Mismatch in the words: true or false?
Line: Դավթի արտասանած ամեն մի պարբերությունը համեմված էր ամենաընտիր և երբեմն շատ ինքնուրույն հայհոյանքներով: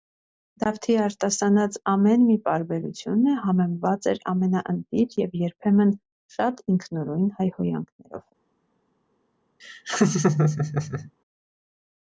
false